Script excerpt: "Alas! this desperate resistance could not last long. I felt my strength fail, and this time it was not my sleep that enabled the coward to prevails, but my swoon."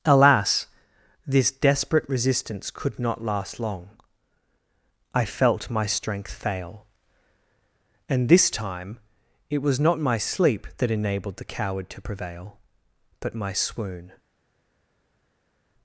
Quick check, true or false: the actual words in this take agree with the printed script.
false